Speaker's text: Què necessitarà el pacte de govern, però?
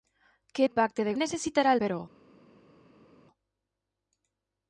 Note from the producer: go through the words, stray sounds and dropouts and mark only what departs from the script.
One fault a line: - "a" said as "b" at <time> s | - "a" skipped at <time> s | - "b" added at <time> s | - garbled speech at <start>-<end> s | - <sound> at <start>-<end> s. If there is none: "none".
- "necessitarà" skipped at 0.7 s
- "govern" said as "necessitarà" at 1.2 s